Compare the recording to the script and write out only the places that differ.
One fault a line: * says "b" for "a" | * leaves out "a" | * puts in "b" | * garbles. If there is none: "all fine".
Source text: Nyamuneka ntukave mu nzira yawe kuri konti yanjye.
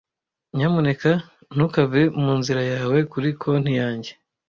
all fine